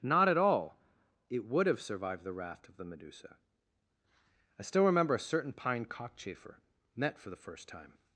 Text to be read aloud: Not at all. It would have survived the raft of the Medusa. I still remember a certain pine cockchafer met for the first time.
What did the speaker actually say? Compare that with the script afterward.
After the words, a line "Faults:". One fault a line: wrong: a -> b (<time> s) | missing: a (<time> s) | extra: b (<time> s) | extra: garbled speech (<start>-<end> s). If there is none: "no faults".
Not at all. It would have survived the raft of the Medusa. I still remember a certain pine cockchafer met for the first time.
Faults:
no faults